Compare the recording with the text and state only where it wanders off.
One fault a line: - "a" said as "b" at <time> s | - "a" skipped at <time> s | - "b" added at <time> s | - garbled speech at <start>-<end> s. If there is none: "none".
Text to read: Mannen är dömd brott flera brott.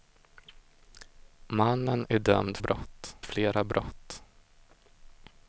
none